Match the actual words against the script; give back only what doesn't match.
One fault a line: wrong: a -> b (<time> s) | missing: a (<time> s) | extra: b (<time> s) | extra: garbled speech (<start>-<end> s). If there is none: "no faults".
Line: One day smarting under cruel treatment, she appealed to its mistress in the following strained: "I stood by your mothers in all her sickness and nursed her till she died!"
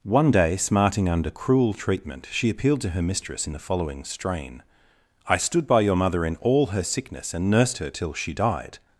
wrong: its -> her (2.9 s)
wrong: strained -> strain (4.0 s)
wrong: mothers -> mother (6.0 s)